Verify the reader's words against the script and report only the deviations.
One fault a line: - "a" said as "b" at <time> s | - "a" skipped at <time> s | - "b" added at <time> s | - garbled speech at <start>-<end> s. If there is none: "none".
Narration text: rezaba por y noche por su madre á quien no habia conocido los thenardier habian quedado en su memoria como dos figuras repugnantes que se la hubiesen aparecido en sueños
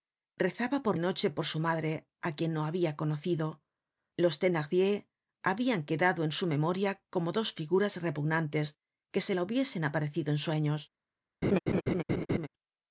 none